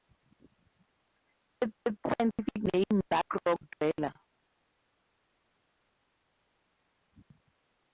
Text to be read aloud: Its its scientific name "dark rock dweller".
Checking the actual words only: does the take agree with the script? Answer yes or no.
yes